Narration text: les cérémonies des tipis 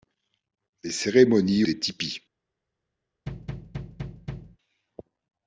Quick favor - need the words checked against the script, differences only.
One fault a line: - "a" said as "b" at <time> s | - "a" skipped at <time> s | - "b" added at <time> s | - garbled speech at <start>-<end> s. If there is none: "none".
none